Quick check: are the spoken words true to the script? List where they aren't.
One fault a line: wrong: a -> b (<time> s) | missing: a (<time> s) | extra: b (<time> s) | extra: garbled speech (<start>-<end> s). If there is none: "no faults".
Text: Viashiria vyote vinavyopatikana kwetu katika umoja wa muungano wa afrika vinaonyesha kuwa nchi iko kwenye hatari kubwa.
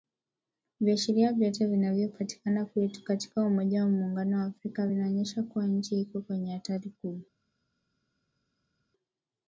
no faults